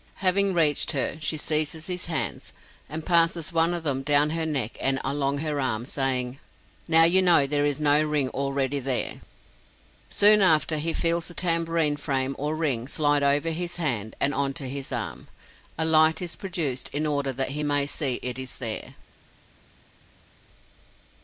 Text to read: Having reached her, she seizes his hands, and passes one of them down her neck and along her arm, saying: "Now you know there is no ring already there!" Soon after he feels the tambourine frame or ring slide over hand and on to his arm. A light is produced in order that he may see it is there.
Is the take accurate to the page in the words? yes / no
no